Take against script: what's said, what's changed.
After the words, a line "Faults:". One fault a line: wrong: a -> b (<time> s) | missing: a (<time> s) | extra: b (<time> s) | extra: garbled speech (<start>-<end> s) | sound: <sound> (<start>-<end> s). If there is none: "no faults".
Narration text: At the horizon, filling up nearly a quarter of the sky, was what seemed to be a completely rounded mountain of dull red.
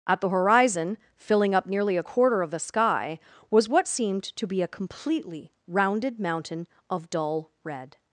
At the horizon, filling up nearly a quarter of the sky, was what seemed to be a completely rounded mountain of dull red.
Faults:
no faults